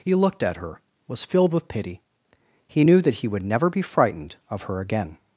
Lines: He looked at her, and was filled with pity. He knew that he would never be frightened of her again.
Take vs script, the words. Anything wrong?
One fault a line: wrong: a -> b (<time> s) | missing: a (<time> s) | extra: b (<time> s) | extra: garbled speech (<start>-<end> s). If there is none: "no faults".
missing: and (0.8 s)